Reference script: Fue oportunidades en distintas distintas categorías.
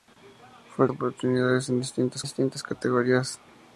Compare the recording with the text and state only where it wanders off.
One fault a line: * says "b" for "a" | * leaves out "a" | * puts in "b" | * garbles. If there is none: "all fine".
all fine